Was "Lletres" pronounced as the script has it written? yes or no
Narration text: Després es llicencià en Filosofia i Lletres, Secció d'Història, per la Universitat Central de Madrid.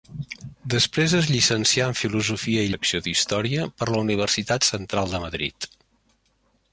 no